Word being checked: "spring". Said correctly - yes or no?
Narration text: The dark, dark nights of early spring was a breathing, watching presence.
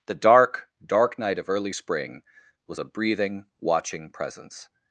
yes